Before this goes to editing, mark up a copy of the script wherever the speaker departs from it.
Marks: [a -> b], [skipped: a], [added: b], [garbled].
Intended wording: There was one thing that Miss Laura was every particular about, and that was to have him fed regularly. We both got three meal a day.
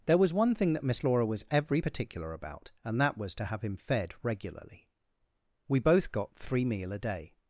There was one thing that Miss Laura was every particular about, and that was to have him fed regularly. We both got three meal a day.